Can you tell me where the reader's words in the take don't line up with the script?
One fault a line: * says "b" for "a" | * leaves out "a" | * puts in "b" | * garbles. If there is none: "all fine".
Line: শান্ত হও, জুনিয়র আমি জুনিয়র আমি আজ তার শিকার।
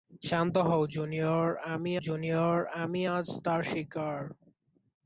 all fine